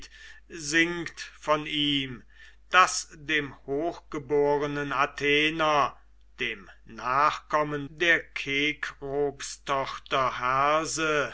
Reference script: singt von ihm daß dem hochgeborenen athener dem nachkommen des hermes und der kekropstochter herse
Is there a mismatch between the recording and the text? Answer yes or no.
yes